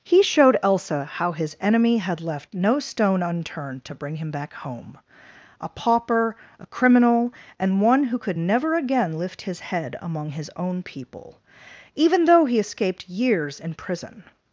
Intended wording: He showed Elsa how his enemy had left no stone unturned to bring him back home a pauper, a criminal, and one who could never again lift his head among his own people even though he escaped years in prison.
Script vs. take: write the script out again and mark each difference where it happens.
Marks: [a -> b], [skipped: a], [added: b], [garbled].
He showed Elsa how his enemy had left no stone unturned to bring him back home a pauper, a criminal, and one who could never again lift his head among his own people even though he escaped years in prison.